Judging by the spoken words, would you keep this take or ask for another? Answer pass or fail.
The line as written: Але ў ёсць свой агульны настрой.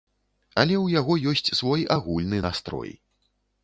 fail